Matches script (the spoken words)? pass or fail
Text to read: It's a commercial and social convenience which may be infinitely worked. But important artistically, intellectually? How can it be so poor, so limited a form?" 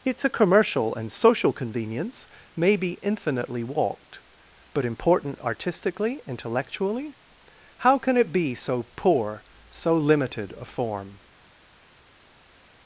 fail